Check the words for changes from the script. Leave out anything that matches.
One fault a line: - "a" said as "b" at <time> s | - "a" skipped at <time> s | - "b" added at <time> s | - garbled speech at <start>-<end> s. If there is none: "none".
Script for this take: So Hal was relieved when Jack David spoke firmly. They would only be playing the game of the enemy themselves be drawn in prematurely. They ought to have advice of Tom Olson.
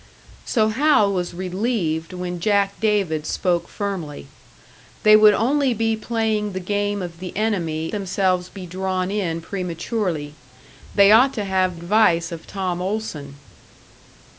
none